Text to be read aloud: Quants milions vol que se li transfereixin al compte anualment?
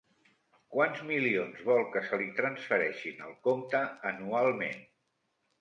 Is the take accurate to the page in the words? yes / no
yes